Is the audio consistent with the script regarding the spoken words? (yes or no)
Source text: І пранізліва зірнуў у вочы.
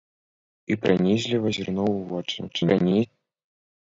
no